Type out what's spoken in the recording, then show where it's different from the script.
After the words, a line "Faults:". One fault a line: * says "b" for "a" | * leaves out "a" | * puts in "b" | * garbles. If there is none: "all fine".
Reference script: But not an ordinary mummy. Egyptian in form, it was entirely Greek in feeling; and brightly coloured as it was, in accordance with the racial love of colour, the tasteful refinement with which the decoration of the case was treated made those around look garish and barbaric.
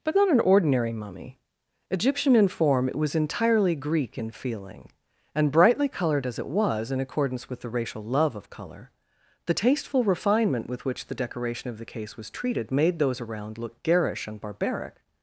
But not an ordinary mummy. Egyptian in form, it was entirely Greek in feeling; and brightly coloured as it was, in accordance with the racial love of colour, the tasteful refinement with which the decoration of the case was treated made those around look garish and barbaric.
Faults:
all fine